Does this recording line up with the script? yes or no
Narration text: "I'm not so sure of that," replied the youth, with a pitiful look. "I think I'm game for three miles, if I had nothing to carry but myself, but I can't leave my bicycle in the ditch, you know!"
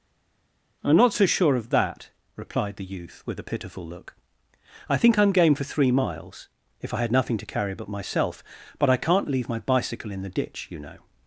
yes